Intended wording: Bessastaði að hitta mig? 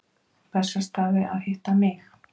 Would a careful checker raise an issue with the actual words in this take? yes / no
no